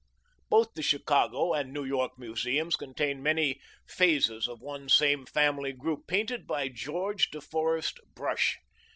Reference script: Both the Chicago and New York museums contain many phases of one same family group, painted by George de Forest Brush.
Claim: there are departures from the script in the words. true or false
false